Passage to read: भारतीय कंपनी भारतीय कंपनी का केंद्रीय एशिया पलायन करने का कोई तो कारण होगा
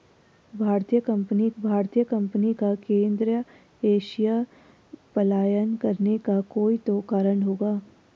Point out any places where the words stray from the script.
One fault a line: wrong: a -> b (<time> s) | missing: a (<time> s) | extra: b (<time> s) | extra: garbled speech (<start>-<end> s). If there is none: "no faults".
no faults